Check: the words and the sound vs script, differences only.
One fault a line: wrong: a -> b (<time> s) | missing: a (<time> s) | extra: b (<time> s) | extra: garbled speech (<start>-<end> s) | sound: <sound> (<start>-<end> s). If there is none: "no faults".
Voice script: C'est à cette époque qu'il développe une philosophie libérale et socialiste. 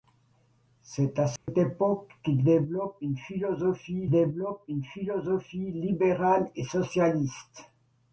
sound: dropout (1.4-1.5 s)
extra: développe une philosophie (4.1 s)